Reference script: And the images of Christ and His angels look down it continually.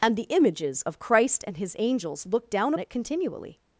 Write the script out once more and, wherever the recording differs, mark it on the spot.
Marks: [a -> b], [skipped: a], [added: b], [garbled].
And the images of Christ and His angels look down it continually.